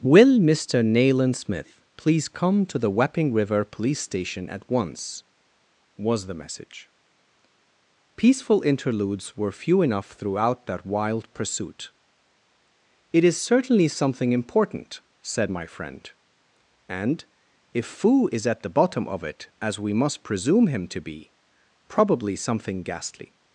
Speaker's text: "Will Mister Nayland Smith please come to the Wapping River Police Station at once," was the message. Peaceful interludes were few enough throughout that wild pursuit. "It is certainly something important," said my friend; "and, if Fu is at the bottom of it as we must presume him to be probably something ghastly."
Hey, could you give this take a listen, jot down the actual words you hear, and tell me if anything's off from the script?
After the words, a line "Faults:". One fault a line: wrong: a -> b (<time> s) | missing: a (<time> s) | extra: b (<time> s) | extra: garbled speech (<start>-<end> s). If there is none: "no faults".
"Will Mister Nayland Smith please come to the Wapping River Police Station at once," was the message. Peaceful interludes were few enough throughout that wild pursuit. "It is certainly something important," said my friend; "and, if Fu is at the bottom of it as we must presume him to be probably something ghastly."
Faults:
no faults